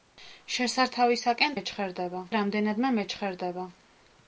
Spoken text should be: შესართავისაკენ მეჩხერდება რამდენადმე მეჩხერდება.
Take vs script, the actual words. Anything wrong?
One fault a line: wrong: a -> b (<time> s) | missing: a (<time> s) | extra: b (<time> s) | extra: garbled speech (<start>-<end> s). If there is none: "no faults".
no faults